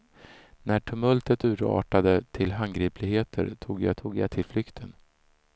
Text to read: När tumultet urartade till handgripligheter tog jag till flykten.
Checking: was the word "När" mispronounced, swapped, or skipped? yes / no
no